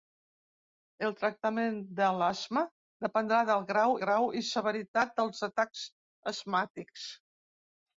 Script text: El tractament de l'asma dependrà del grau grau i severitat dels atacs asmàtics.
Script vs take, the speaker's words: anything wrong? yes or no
no